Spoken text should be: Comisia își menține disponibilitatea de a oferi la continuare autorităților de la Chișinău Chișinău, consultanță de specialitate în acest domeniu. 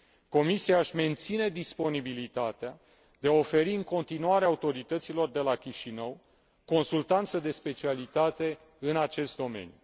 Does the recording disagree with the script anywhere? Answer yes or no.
yes